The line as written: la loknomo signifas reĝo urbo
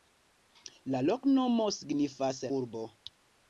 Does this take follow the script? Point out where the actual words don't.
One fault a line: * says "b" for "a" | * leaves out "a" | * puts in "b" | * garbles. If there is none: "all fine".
* leaves out "reĝo"